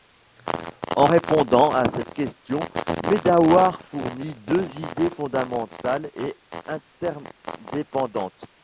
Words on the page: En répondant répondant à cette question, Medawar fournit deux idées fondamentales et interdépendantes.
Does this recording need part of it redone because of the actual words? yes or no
yes